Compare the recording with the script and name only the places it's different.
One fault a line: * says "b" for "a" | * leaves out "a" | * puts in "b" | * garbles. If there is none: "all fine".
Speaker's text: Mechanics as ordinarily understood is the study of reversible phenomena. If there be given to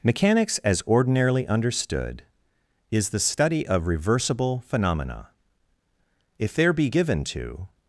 all fine